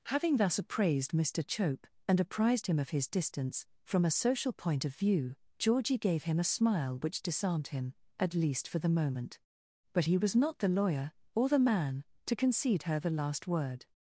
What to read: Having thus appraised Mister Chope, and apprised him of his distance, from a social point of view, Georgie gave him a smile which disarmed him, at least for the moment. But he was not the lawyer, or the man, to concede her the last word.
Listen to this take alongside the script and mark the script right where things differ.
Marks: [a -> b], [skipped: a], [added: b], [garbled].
Having thus appraised Mister Chope, and apprised him of his distance, from a social point of view, Georgie gave him a smile which disarmed him, at least for the moment. But he was not the lawyer, or the man, to concede her the last word.